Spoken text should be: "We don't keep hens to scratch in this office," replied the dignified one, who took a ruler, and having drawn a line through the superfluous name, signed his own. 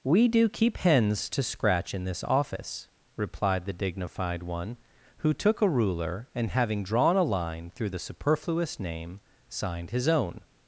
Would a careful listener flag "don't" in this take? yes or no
yes